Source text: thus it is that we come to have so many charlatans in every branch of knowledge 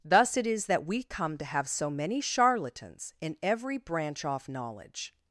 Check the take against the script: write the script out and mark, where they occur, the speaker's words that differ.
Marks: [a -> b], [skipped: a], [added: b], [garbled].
thus it is that we come to have so many charlatans in every branch [of -> off] knowledge